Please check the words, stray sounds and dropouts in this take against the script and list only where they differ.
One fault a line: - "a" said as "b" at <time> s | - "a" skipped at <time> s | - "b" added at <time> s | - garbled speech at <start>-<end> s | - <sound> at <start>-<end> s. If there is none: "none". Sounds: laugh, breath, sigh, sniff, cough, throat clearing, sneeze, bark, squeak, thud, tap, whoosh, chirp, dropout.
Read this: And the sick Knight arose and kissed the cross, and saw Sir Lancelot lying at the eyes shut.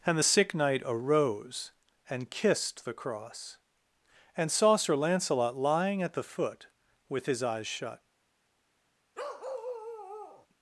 - "foot with his" added at 6.2 s
- bark at 9.1-10.5 s